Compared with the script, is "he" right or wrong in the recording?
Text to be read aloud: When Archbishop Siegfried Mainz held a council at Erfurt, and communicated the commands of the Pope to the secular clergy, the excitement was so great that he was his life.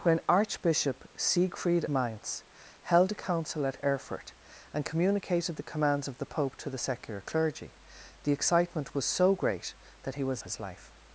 right